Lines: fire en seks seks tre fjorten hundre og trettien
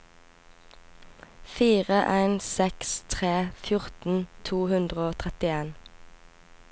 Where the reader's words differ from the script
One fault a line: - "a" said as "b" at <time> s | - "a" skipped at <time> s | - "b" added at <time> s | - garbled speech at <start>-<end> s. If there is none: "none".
- "seks" skipped at 3.0 s
- "to" added at 4.5 s